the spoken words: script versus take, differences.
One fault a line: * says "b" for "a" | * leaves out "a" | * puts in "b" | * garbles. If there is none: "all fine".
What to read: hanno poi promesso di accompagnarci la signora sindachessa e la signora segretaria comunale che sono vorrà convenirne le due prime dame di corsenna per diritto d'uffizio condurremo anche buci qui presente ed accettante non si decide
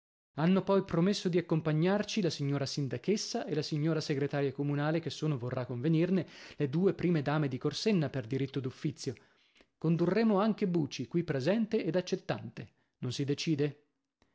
all fine